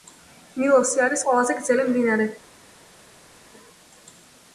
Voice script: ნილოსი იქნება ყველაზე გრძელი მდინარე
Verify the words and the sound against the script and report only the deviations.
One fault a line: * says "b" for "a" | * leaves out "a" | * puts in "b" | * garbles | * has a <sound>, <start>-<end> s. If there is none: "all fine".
* says "არის" for "იქნება"